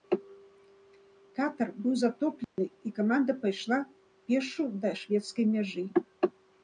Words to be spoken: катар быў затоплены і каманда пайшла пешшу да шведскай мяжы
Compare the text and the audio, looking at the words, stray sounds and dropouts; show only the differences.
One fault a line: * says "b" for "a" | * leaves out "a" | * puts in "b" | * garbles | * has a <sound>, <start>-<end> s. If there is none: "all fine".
* has a dropout, 2.4-2.6 s